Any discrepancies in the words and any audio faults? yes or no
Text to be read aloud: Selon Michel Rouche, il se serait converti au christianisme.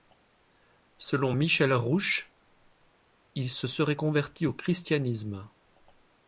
no